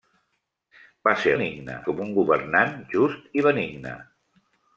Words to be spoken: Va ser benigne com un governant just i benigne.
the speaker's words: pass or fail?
pass